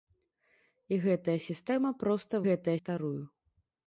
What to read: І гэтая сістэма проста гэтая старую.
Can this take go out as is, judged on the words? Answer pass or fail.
pass